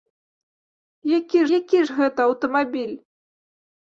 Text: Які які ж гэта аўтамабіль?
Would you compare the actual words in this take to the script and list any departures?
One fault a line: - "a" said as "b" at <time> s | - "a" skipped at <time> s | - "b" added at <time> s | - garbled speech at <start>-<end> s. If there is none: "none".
none